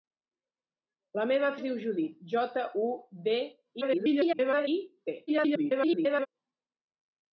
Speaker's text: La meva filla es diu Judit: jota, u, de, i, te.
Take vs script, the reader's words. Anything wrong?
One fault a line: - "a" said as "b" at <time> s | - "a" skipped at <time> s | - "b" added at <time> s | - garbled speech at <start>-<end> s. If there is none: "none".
- "filla" skipped at 1.5 s
- garbled speech at 3.8-4.7 s
- garbled speech at 5.3-6.3 s